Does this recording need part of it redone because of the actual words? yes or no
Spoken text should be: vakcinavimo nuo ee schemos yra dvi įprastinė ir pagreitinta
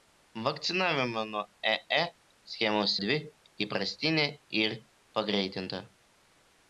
yes